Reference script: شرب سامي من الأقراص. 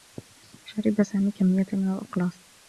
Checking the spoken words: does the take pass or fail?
fail